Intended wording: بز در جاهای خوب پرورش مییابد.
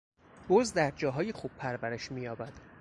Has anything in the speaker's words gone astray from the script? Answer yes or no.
no